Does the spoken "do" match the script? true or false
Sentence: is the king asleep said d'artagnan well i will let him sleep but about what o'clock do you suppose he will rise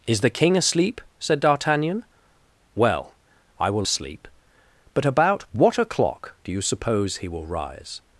true